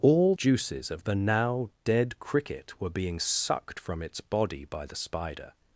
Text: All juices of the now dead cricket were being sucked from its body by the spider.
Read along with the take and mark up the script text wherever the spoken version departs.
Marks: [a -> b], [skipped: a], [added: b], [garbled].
All juices of the now dead cricket were being sucked from its body by the spider.